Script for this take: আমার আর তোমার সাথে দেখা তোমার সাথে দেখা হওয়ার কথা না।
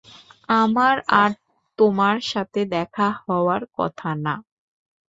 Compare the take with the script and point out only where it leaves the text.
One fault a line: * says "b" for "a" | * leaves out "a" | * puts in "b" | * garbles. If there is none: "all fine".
* leaves out "তোমার সাথে দেখা"